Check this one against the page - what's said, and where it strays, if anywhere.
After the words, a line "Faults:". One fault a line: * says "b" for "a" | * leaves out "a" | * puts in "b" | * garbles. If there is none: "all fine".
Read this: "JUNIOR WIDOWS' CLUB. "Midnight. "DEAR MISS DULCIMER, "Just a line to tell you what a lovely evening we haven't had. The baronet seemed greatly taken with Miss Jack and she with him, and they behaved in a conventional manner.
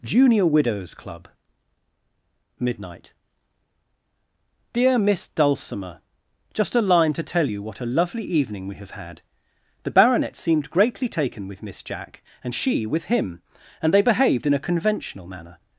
"JUNIOR WIDOWS' CLUB. "Midnight. "DEAR MISS DULCIMER, "Just a line to tell you what a lovely evening we have had. The baronet seemed greatly taken with Miss Jack and she with him, and they behaved in a conventional manner.
Faults:
* says "have" for "haven't"